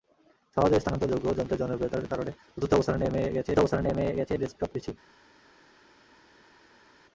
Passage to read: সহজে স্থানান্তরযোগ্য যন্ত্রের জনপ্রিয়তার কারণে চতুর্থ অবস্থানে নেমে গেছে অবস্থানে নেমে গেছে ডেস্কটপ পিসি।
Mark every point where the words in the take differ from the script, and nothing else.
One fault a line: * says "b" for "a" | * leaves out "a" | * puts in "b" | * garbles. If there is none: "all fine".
all fine